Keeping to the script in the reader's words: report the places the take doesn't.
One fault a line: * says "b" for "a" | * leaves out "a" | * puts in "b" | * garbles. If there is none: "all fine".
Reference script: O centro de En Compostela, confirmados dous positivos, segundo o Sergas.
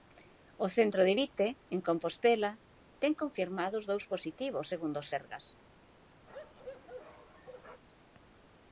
* puts in "Vite"
* puts in "ten"